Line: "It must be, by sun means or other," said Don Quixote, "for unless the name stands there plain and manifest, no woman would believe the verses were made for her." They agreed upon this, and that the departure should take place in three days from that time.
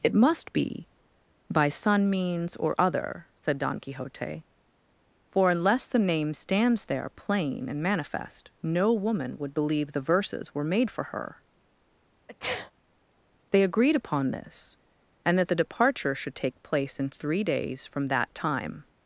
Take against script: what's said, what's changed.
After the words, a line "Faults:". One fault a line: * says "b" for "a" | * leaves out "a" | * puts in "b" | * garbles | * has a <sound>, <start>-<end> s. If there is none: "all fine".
"It must be, by sun means or other," said Don Quixote, "for unless the name stands there plain and manifest, no woman would believe the verses were made for her." They agreed upon this, and that the departure should take place in three days from that time.
Faults:
* has a sneeze, 12.3-12.7 s